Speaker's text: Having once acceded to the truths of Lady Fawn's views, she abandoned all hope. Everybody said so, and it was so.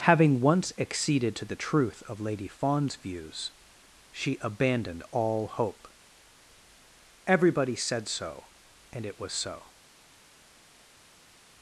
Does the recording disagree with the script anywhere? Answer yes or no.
yes